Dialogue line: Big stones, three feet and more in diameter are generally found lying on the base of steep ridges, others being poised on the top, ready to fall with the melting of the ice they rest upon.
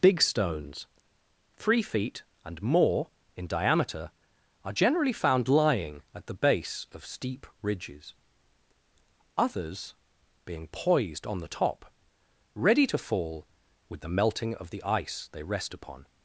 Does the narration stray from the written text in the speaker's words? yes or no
yes